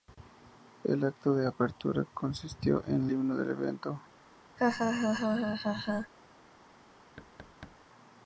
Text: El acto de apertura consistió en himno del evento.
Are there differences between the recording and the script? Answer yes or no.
no